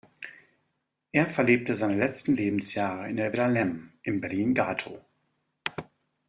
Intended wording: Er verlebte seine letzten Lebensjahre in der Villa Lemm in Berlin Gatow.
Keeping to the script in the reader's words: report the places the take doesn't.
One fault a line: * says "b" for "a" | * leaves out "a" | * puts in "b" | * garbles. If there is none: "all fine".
all fine